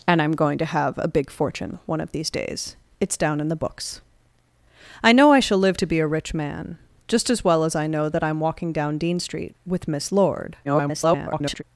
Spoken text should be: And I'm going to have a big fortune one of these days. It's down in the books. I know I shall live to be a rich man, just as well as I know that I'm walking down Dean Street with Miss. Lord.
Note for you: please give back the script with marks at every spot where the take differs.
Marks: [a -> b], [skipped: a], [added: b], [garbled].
And I'm going to have a big fortune one of these days. It's down in the books. I know I shall live to be a rich man, just as well as I know that I'm walking down Dean Street with Miss. Lord. [garbled]